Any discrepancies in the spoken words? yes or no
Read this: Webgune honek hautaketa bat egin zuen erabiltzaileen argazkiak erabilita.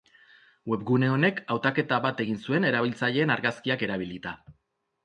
no